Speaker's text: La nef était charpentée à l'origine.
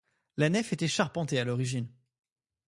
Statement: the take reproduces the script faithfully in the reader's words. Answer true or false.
true